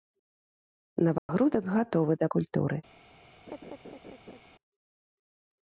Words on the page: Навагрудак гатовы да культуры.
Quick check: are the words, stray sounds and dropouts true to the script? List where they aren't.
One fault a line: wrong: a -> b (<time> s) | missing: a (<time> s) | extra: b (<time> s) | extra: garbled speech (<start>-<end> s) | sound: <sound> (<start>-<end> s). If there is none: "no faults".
sound: dropout (1.2-1.3 s)
sound: laugh (3.5-4.4 s)